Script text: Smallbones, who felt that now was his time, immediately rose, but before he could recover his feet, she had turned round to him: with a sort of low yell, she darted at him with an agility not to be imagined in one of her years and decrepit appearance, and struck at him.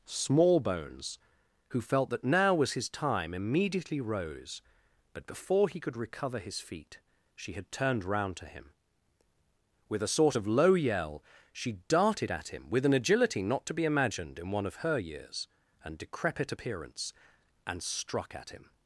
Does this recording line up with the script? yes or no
yes